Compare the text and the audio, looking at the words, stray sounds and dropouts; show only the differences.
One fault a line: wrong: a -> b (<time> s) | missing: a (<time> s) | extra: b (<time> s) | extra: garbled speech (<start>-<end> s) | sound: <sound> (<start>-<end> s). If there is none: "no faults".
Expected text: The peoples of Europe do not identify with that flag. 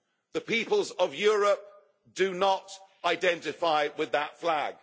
no faults